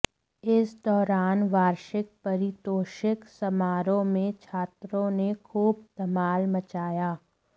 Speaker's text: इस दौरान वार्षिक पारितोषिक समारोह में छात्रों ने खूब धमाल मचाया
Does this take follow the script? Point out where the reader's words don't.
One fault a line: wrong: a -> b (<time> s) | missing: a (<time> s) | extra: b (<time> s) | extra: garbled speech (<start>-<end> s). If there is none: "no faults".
no faults